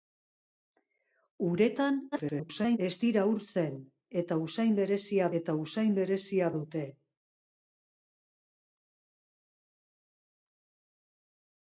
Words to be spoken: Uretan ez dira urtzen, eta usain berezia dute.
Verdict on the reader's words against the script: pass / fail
fail